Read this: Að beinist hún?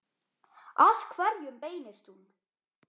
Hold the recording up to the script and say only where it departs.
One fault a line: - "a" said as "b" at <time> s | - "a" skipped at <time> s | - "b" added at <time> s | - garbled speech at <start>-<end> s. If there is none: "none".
- "hverjum" added at 1.1 s